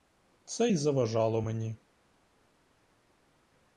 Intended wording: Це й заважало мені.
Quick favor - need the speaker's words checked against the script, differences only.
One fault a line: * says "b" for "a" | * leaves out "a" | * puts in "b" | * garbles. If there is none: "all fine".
all fine